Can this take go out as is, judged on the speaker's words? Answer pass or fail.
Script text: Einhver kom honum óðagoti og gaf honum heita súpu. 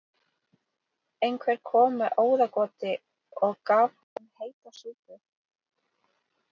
fail